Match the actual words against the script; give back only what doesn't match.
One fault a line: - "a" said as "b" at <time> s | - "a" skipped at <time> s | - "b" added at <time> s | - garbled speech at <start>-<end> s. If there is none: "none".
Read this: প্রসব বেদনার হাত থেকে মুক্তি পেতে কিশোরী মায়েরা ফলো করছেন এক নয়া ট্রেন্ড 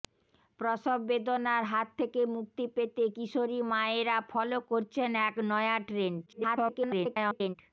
- garbled speech at 6.3-7.6 s